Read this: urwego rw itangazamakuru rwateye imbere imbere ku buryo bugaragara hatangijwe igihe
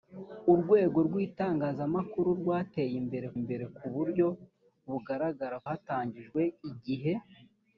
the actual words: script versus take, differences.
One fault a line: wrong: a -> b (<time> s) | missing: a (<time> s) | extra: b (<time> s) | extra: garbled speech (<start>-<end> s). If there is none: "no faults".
no faults